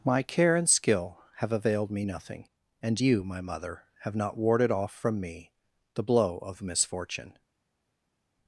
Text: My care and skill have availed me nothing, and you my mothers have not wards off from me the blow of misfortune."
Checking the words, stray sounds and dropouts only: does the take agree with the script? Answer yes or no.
no